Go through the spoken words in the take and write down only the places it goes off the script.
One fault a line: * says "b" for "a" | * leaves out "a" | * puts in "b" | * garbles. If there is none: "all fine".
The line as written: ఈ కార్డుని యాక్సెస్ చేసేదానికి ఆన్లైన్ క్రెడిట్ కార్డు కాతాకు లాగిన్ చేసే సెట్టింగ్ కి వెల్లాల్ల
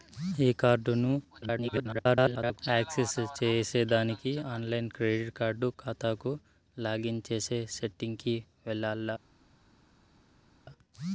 * garbles